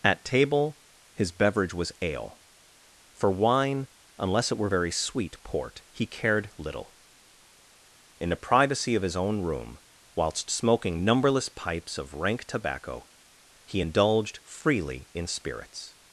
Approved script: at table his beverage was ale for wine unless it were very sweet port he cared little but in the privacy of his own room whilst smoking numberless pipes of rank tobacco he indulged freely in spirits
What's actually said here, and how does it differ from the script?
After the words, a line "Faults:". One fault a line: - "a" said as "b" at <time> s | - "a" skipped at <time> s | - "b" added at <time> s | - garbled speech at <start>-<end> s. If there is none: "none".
at table his beverage was ale for wine unless it were very sweet port he cared little in the privacy of his own room whilst smoking numberless pipes of rank tobacco he indulged freely in spirits
Faults:
- "but" skipped at 6.9 s